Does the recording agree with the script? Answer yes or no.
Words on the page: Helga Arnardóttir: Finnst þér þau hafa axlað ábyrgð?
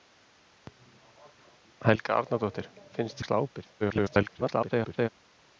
no